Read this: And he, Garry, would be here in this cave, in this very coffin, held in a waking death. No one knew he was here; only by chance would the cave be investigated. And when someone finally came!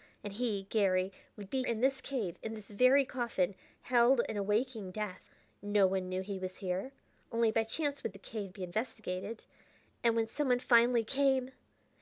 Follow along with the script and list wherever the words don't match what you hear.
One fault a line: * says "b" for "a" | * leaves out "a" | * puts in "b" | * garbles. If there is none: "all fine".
* leaves out "here"